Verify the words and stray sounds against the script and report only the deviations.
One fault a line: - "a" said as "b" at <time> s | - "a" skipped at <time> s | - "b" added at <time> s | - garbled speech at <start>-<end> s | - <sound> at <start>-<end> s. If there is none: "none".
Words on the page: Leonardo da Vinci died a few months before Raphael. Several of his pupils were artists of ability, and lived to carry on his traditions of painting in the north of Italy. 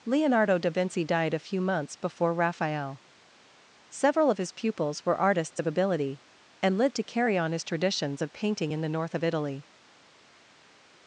none